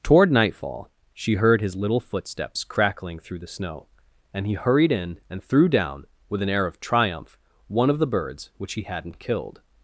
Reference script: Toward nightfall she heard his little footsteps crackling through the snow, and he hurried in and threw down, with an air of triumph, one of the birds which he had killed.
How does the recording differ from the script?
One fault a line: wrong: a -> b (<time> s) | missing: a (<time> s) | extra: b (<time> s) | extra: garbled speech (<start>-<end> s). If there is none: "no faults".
wrong: had -> hadn't (8.8 s)